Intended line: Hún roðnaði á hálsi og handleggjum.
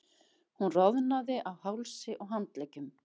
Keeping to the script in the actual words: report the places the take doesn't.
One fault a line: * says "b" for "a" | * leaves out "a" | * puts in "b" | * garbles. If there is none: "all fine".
all fine